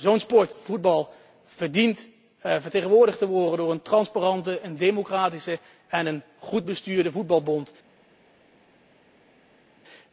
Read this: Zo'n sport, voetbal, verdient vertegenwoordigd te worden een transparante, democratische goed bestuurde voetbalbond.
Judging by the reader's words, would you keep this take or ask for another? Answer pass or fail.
fail